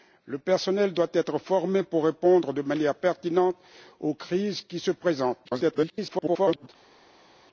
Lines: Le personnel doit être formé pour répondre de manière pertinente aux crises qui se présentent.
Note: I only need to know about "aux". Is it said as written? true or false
true